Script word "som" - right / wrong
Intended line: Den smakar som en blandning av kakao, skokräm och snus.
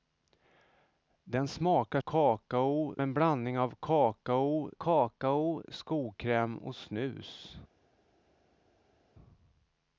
wrong